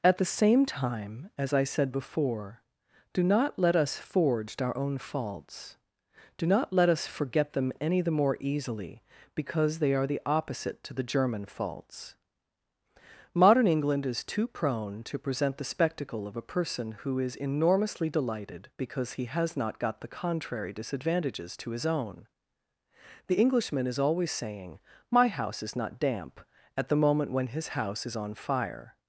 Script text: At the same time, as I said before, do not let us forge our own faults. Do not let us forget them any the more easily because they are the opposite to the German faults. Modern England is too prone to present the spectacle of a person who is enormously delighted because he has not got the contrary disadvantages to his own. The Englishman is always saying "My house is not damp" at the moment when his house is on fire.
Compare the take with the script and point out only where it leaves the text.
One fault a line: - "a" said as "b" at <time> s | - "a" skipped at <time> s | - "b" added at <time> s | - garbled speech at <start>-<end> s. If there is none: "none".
none